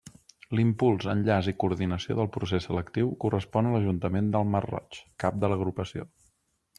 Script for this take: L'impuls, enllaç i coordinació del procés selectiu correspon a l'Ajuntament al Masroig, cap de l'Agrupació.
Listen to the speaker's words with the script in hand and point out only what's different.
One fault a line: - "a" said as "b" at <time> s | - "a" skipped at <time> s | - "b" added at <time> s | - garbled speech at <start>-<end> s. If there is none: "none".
- "al" said as "del" at 4.4 s